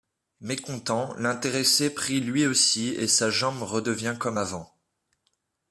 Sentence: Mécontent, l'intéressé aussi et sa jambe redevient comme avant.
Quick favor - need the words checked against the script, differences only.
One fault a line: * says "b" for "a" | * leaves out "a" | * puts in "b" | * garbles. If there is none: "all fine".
* puts in "prie lui"